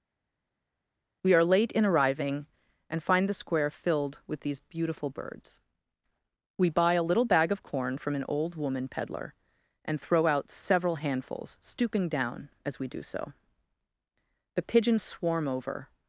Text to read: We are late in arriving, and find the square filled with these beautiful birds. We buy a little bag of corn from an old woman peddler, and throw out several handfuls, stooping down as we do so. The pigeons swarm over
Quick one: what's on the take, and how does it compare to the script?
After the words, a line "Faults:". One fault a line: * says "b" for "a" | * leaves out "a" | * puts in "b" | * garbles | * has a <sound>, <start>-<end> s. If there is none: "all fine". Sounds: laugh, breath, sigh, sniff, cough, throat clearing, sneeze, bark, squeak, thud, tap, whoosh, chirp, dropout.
We are late in arriving, and find the square filled with these beautiful birds. We buy a little bag of corn from an old woman peddler, and throw out several handfuls, stooping down as we do so. The pigeons swarm over
Faults:
all fine